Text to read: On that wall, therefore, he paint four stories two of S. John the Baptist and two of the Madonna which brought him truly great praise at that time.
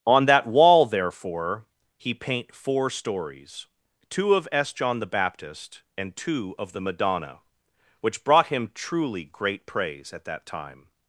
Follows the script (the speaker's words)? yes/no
yes